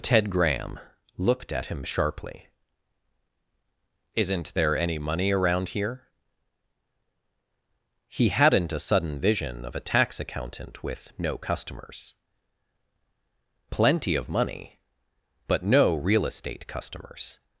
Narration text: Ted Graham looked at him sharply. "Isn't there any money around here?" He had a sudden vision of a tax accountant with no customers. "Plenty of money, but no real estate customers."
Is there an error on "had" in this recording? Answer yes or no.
yes